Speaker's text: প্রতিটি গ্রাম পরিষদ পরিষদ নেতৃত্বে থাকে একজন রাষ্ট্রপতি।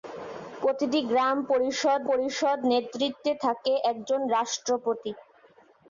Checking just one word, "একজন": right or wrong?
right